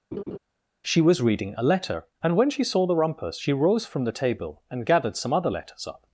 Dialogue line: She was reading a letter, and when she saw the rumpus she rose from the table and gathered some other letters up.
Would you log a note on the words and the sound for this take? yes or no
yes